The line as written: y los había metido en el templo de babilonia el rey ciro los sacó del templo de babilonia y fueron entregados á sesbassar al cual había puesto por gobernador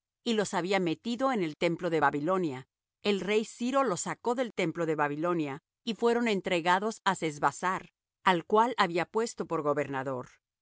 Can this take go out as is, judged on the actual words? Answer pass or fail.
pass